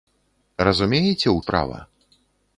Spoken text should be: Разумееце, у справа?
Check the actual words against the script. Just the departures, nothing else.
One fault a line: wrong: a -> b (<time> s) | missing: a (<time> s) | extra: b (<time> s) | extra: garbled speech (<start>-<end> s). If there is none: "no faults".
no faults